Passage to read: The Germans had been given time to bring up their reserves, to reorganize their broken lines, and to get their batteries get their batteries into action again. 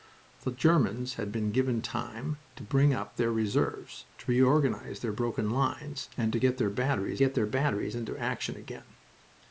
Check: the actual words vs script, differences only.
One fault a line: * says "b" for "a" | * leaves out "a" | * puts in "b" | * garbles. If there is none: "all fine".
all fine